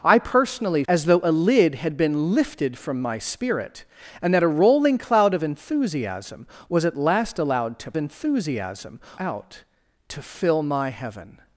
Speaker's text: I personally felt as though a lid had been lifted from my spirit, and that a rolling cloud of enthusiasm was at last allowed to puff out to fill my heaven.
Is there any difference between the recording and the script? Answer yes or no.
yes